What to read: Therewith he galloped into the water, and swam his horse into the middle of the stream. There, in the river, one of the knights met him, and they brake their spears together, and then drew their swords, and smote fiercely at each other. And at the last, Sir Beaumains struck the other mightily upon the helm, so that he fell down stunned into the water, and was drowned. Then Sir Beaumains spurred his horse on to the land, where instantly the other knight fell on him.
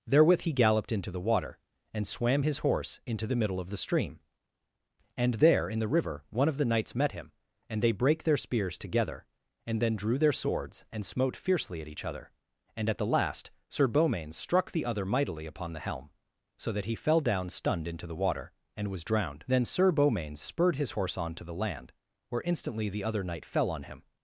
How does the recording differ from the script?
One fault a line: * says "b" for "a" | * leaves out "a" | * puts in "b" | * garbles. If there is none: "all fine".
* puts in "And"